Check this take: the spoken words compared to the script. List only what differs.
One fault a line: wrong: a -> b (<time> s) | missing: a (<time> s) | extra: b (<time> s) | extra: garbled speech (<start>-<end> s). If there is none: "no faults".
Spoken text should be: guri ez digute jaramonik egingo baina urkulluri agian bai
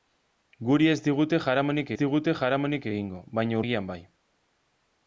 extra: digute jaramonik (2.0 s)
missing: urkulluri (3.6 s)